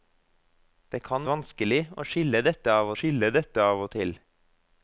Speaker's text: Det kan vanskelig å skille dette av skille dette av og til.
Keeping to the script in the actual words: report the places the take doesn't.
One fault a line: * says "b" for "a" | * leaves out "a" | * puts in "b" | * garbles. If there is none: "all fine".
all fine